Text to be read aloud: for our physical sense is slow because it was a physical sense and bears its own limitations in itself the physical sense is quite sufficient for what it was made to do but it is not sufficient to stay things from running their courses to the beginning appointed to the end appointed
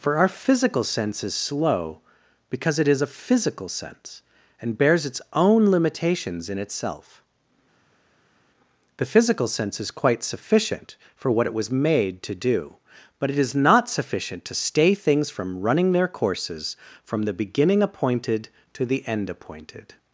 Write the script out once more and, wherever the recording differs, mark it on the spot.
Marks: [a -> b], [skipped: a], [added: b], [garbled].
for our physical sense is slow because it [was -> is] a physical sense and bears its own limitations in itself the physical sense is quite sufficient for what it was made to do but it is not sufficient to stay things from running their courses [to -> from] the beginning appointed to the end appointed